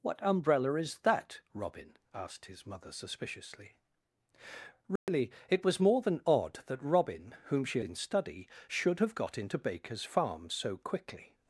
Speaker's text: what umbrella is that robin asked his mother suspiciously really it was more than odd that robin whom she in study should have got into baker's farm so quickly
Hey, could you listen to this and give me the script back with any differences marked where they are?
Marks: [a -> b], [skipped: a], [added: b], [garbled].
what umbrella is that robin asked his mother suspiciously really it was more than odd that robin whom she in study should have got into baker's farm so quickly